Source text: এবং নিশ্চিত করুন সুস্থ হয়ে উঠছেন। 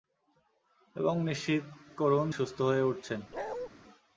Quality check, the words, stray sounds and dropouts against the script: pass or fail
fail